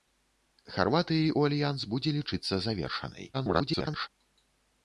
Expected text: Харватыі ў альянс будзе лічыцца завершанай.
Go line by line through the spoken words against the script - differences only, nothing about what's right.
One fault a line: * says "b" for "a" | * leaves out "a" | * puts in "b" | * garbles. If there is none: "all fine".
* garbles